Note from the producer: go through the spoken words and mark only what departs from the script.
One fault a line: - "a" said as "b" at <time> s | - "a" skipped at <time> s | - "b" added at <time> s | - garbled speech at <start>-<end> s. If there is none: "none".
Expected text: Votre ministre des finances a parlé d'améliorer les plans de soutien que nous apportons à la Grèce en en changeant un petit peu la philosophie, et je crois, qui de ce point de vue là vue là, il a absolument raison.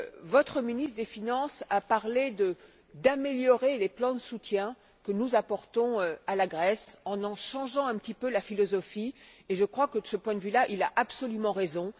- "qui" said as "que" at 9.9 s
- "vue là" skipped at 10.7 s